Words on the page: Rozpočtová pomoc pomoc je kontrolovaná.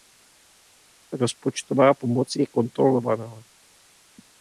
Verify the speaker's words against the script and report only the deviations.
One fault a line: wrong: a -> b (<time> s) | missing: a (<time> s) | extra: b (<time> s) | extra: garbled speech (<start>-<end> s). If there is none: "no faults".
missing: pomoc (2.4 s)